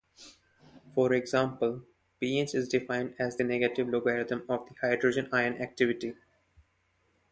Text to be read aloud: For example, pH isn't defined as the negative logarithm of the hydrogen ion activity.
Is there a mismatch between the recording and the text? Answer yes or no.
yes